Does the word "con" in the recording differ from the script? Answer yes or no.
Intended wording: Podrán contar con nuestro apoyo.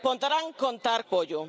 yes